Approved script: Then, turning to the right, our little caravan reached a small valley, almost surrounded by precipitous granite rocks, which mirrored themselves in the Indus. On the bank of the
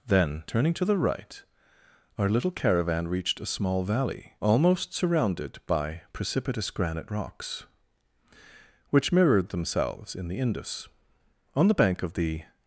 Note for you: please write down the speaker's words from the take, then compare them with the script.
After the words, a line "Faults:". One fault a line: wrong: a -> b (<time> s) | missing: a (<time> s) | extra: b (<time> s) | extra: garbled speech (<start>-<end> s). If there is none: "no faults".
Then, turning to the right, our little caravan reached a small valley, almost surrounded by precipitous granite rocks, which mirrored themselves in the Indus. On the bank of the
Faults:
no faults